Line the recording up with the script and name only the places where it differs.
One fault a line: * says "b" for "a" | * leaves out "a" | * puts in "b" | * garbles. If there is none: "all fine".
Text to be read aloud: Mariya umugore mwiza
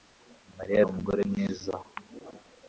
all fine